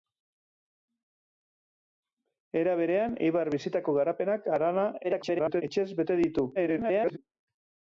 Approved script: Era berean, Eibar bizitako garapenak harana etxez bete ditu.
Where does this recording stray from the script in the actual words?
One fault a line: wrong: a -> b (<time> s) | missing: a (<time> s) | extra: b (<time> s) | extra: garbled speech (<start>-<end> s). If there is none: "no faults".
extra: garbled speech (5.0-5.6 s)
extra: garbled speech (6.5-7.2 s)